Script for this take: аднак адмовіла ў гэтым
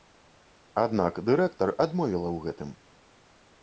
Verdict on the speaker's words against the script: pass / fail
fail